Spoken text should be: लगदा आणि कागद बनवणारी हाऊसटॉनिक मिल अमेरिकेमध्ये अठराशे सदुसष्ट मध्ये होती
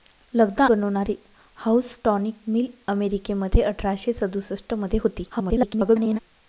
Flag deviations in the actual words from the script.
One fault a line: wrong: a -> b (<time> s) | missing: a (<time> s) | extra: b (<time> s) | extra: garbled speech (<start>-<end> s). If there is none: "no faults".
missing: आणि कागद (0.7 s)
extra: garbled speech (5.3-6.2 s)